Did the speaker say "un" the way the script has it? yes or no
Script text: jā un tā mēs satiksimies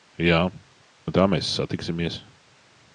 yes